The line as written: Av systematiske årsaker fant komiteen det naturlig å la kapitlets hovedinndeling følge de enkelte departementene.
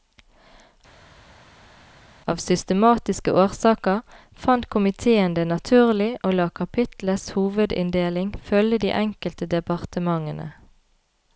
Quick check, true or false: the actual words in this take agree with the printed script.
true